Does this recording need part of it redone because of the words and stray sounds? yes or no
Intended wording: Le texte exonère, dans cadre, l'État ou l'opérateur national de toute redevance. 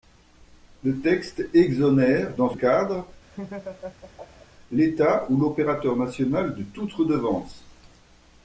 yes